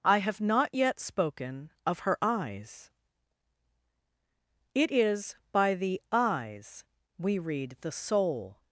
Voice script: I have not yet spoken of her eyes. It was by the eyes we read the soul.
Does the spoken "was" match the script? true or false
false